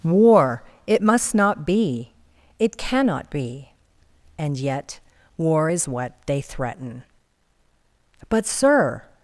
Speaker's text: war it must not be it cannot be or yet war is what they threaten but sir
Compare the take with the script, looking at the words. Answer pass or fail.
fail